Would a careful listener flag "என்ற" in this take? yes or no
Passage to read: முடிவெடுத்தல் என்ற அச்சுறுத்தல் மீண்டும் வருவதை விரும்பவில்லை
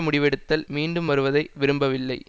yes